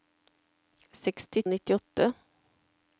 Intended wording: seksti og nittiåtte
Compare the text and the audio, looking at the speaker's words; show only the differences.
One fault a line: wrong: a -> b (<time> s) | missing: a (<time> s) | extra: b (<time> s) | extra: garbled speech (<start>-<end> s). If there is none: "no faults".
no faults